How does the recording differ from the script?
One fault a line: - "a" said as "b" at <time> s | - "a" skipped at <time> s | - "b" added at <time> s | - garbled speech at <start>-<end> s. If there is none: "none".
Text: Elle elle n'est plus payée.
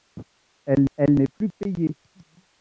none